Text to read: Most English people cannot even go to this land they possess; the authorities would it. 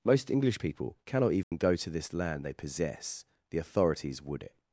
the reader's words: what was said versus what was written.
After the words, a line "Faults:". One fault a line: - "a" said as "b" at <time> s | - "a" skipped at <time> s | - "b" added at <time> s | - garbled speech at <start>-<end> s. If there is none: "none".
Most English people cannot even go to this land they possess; the authorities would it.
Faults:
none